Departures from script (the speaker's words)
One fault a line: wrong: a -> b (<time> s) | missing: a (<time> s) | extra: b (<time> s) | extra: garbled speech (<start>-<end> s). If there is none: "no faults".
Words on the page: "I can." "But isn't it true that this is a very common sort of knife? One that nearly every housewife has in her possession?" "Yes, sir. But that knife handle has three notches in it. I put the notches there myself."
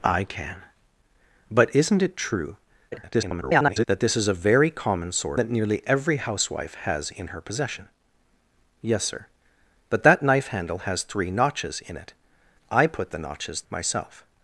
extra: garbled speech (2.9-3.9 s)
missing: of knife One (5.4 s)
missing: there (13.6 s)